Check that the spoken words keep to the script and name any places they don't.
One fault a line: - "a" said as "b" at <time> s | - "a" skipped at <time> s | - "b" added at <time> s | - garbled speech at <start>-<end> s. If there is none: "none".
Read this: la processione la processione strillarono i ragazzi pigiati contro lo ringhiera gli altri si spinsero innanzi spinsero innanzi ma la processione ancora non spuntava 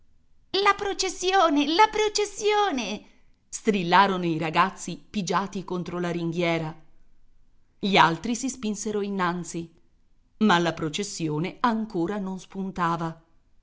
- "lo" said as "la" at 6.0 s
- "spinsero innanzi" skipped at 9.7 s